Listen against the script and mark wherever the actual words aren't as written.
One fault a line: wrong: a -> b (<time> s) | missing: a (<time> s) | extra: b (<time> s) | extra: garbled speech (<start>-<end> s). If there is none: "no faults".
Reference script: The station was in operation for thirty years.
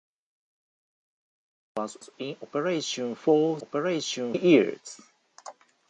extra: station (2.0 s)
wrong: thirty -> operation (3.6 s)